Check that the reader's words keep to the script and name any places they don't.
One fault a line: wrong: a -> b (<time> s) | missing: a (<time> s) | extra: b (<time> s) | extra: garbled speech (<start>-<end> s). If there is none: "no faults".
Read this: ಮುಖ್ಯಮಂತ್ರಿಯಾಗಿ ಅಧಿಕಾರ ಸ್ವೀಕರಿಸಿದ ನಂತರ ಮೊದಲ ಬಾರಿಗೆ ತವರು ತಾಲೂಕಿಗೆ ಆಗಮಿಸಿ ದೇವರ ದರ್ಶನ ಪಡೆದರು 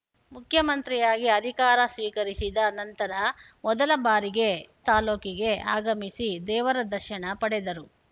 missing: ತವರು (4.5 s)